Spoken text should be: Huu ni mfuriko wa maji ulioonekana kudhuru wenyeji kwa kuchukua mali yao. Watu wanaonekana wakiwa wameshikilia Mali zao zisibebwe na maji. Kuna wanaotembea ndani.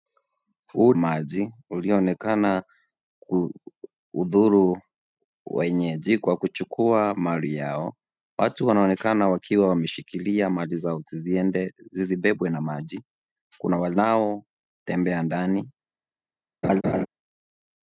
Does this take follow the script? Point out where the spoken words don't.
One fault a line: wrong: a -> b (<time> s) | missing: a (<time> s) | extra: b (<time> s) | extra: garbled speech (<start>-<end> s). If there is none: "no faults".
missing: ni mfuriko wa (0.9 s)